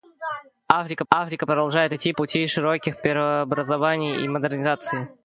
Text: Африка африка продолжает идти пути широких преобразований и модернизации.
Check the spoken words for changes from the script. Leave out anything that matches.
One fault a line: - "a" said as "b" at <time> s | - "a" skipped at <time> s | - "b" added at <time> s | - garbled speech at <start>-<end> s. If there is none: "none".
none